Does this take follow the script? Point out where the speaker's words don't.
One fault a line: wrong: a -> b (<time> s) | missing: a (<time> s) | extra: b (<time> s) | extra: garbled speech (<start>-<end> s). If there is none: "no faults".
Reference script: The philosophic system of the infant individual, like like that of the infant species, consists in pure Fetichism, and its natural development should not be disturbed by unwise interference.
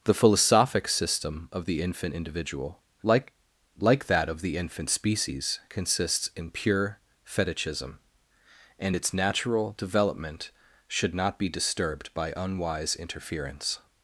no faults